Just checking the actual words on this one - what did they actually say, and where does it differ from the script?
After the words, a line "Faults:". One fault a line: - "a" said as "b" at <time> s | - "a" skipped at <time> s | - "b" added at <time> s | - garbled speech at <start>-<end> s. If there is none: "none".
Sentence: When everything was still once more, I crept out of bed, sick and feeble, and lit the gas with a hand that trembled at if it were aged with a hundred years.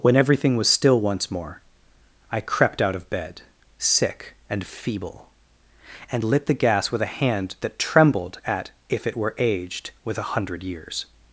When everything was still once more, I crept out of bed, sick and feeble, and lit the gas with a hand that trembled at if it were aged with a hundred years.
Faults:
none